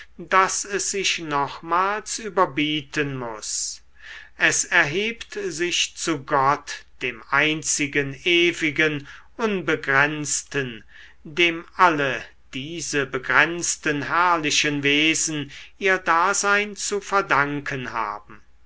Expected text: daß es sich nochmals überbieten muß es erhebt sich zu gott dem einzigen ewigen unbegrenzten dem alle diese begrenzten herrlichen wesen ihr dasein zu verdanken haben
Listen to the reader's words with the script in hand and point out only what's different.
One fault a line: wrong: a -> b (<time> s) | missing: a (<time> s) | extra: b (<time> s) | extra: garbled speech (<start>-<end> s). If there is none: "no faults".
no faults